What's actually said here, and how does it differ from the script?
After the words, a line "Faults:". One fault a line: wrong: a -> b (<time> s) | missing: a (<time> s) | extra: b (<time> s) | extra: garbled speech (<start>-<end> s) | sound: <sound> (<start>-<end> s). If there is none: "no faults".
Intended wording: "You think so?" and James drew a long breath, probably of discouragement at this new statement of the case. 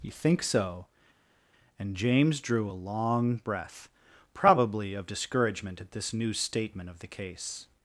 "You think so?" and James drew a long breath, probably of discouragement at this new statement of the case.
Faults:
no faults